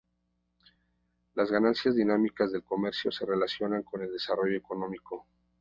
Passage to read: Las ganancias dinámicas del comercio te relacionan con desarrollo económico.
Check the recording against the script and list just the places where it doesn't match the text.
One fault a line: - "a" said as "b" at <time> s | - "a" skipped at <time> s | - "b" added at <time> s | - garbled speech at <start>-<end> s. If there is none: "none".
- "te" said as "se" at 3.1 s
- "el" added at 4.0 s